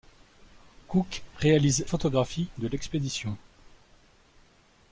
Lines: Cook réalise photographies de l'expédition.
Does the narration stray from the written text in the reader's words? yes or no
no